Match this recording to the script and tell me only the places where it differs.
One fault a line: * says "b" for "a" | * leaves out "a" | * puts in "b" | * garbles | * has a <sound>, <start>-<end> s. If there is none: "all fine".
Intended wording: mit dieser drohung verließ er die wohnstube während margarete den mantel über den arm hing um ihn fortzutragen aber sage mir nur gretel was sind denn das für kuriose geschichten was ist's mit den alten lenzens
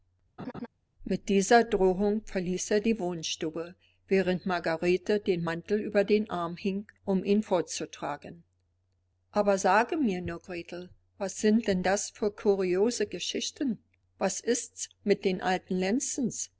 * has a laugh, 0.4-0.7 s